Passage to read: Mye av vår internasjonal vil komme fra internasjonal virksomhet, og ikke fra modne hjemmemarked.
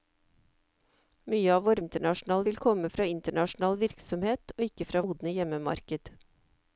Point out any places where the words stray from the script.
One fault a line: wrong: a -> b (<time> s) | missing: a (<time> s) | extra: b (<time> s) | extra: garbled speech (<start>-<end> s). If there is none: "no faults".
no faults